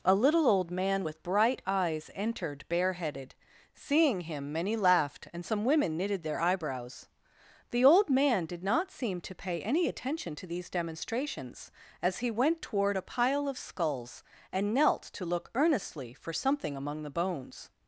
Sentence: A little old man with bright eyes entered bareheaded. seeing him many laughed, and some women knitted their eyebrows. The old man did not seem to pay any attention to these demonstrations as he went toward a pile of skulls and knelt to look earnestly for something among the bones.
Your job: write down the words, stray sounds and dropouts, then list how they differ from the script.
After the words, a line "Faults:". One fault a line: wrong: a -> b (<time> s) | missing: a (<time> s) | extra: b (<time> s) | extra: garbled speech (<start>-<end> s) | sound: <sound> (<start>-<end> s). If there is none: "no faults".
A little old man with bright eyes entered bareheaded. seeing him many laughed, and some women knitted their eyebrows. The old man did not seem to pay any attention to these demonstrations as he went toward a pile of skulls and knelt to look earnestly for something among the bones.
Faults:
no faults